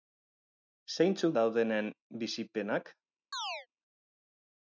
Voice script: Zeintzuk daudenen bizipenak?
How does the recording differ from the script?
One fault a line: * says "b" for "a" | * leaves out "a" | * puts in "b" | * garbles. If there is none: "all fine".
all fine